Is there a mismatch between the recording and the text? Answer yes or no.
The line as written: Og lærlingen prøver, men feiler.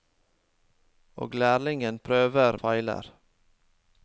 yes